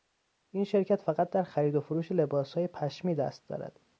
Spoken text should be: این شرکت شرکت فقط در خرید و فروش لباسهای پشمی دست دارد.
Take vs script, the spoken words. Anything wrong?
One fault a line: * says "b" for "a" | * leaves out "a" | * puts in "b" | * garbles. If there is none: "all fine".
* leaves out "شرکت"